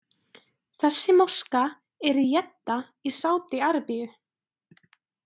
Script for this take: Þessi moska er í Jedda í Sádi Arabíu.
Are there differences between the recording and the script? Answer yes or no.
no